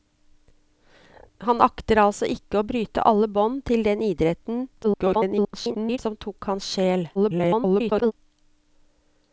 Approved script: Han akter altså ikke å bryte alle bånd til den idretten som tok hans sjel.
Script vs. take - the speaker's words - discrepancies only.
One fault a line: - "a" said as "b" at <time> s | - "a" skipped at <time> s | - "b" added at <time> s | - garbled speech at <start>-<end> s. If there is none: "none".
- garbled speech at 4.8-6.0 s
- garbled speech at 7.1-8.1 s